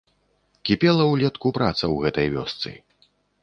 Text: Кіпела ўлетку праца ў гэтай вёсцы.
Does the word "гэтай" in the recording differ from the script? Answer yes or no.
no